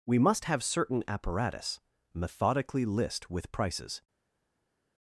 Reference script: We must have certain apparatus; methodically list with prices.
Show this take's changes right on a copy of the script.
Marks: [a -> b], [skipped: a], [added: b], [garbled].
We must have certain apparatus; methodically list with prices.